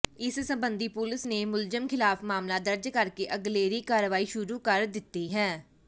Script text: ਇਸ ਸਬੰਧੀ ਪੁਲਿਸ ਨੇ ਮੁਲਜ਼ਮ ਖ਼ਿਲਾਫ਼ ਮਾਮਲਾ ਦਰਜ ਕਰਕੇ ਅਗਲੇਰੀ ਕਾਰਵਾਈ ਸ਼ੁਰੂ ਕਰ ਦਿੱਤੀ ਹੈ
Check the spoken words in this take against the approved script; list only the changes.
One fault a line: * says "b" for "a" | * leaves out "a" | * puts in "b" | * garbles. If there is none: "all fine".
all fine